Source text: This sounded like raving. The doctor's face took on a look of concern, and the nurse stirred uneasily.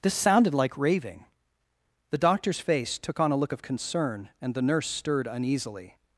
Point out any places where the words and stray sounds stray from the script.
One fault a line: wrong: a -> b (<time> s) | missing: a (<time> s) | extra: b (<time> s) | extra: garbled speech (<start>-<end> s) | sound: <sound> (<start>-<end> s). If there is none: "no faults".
no faults